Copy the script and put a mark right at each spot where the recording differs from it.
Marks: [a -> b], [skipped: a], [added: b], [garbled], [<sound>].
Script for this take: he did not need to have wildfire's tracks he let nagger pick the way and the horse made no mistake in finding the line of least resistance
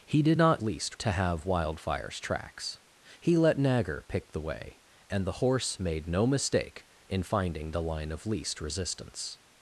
he did not [need -> least] to have wildfire's tracks he let nagger pick the way and the horse made no mistake in finding the line of least resistance